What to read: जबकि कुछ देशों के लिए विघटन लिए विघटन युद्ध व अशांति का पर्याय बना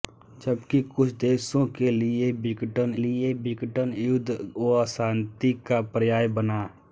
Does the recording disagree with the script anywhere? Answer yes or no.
no